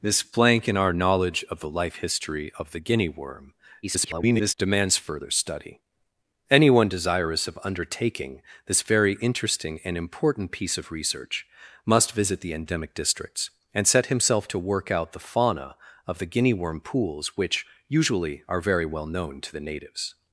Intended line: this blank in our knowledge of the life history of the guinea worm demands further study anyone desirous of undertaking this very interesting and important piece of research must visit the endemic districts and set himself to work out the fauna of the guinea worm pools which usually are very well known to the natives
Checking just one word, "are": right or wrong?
right